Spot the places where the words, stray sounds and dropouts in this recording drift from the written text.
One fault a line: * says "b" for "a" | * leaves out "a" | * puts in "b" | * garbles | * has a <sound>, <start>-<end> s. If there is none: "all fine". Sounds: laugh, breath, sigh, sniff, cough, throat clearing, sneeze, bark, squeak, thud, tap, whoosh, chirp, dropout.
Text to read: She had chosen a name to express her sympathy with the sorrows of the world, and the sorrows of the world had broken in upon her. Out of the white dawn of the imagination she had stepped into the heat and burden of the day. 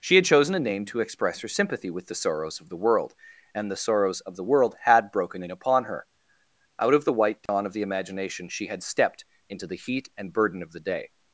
* has a dropout, 7.5-7.5 s